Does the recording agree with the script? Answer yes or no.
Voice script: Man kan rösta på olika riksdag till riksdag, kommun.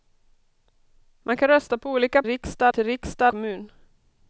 yes